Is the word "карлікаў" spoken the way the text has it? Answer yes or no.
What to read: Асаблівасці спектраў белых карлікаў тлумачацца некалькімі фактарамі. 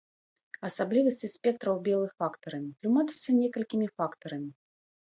no